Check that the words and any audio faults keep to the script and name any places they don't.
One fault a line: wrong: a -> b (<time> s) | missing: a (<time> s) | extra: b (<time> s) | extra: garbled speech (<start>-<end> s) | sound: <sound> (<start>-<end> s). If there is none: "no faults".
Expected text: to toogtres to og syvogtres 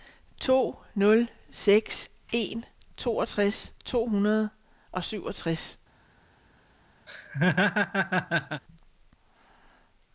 extra: nul seks en (0.9 s)
extra: hundrede (4.0 s)
sound: laugh (7.1-8.6 s)